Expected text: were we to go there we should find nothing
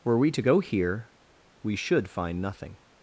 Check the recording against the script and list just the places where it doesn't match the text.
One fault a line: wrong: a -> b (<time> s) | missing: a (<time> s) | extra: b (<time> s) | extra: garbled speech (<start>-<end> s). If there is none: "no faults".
wrong: there -> here (0.6 s)